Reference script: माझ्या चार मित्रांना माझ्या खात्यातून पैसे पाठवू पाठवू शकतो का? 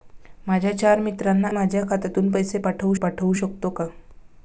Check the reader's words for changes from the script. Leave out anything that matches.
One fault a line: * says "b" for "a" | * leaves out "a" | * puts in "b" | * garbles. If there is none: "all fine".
all fine